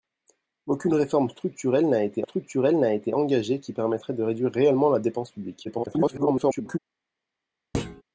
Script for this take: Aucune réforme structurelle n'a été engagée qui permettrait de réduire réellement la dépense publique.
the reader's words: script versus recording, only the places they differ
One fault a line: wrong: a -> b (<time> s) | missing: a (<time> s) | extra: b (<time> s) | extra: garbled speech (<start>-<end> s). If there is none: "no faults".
extra: structurelle n'a été (2.2 s)
extra: garbled speech (5.6-6.8 s)